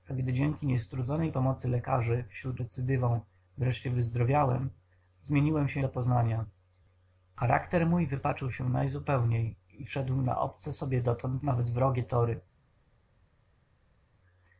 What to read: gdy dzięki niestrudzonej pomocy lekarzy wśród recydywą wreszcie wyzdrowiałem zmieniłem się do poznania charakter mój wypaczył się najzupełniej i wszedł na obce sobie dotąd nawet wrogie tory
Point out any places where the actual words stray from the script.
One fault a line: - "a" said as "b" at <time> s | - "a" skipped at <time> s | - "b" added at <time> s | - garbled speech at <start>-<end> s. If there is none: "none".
none